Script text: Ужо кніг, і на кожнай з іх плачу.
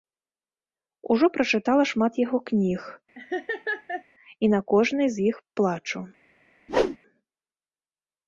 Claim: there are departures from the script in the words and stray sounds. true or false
true